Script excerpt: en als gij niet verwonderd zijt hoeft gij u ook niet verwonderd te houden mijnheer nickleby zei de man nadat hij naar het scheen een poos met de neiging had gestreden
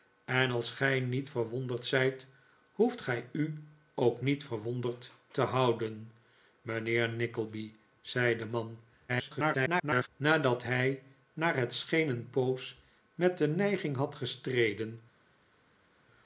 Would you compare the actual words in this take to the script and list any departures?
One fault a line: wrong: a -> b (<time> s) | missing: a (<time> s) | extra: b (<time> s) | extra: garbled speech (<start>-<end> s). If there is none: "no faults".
extra: garbled speech (9.1-10.1 s)